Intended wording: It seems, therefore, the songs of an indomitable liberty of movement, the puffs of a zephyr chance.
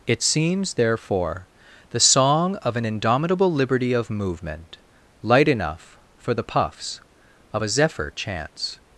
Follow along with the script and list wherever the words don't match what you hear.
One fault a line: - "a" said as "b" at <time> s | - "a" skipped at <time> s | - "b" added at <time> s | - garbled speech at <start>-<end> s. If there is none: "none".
- "songs" said as "song" at 2.0 s
- "light enough for" added at 5.2 s